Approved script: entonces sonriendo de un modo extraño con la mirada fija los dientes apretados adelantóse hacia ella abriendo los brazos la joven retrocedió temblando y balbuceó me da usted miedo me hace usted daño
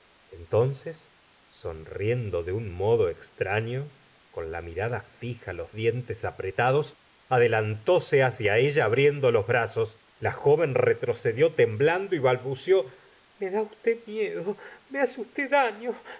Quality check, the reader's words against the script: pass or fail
pass